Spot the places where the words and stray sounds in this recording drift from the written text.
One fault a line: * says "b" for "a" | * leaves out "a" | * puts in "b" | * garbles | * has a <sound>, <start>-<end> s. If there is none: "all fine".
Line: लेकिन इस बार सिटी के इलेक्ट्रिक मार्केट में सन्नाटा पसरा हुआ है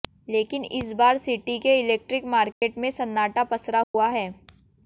* has a dropout, 2.5-2.6 s
* has a dropout, 3.8-3.9 s